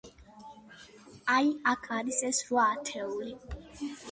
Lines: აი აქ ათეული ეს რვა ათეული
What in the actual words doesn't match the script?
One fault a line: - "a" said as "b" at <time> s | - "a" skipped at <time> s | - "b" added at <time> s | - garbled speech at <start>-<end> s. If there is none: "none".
- "ათეული" said as "არის" at 2.0 s